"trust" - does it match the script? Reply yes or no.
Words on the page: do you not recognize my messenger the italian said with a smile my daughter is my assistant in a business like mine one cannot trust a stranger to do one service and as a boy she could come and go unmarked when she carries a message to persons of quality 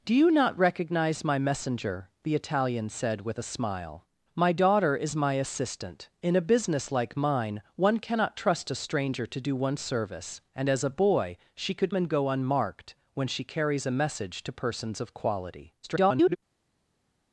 yes